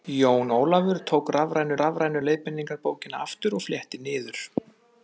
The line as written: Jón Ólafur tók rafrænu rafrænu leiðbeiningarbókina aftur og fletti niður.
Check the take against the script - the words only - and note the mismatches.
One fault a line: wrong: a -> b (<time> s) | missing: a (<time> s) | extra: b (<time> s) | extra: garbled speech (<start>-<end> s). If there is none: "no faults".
no faults